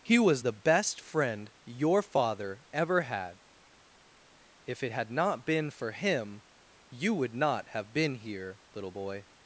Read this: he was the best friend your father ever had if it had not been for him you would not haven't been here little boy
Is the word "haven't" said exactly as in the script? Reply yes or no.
no